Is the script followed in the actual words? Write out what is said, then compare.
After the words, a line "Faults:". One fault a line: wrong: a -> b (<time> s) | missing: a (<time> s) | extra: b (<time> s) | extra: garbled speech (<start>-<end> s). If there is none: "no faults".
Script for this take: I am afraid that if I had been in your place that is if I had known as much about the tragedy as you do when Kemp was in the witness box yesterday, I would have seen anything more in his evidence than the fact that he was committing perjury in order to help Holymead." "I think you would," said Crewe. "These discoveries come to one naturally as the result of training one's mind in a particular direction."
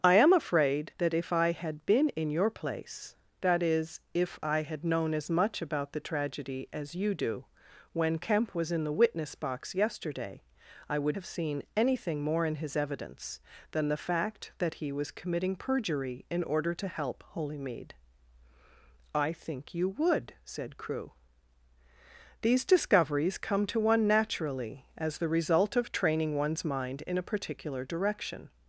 I am afraid that if I had been in your place that is if I had known as much about the tragedy as you do when Kemp was in the witness box yesterday, I would have seen anything more in his evidence than the fact that he was committing perjury in order to help Holymead." "I think you would," said Crewe. "These discoveries come to one naturally as the result of training one's mind in a particular direction."
Faults:
no faults